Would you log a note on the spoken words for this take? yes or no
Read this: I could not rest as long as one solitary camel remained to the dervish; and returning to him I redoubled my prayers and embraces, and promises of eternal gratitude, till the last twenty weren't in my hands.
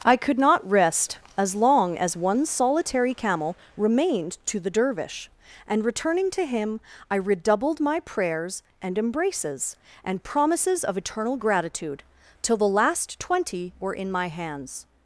yes